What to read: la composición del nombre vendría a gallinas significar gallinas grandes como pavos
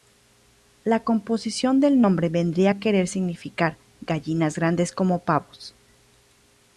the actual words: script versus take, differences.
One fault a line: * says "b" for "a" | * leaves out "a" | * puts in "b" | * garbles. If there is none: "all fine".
* says "querer" for "gallinas"